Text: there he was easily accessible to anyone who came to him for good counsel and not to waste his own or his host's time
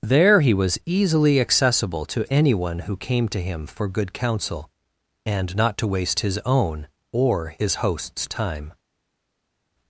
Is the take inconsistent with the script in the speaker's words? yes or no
no